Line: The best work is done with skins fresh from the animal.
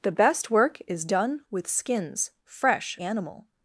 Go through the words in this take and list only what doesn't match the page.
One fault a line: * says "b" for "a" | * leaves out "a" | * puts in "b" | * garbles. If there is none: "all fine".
* leaves out "from the"